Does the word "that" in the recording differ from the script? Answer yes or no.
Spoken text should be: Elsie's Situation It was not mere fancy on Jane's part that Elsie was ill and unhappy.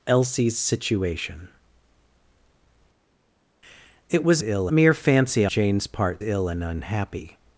yes